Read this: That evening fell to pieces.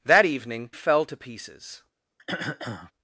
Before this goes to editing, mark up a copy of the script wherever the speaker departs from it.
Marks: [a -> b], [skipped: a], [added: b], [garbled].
That evening fell to pieces.